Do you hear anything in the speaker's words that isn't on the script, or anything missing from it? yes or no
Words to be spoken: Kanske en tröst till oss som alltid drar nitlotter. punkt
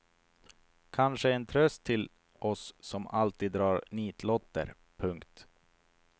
no